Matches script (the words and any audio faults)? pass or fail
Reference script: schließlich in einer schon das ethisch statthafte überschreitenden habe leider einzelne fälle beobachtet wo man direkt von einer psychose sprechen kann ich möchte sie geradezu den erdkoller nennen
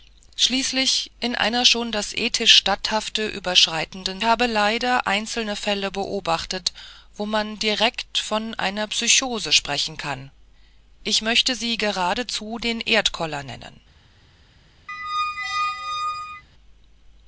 fail